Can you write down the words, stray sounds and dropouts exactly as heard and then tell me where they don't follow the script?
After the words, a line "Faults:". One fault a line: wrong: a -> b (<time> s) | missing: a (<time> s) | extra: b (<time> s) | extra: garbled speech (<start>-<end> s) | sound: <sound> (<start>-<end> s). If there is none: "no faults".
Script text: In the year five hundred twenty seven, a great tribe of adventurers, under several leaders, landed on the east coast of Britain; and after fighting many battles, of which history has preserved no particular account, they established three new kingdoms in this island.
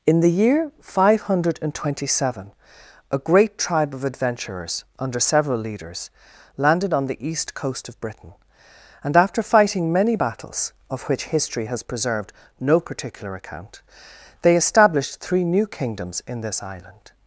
In the year five hundred twenty seven, a great tribe of adventurers, under several leaders, landed on the east coast of Britain; and after fighting many battles, of which history has preserved no particular account, they established three new kingdoms in this island.
Faults:
no faults